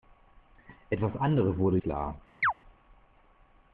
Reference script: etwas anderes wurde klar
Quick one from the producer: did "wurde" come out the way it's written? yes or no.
yes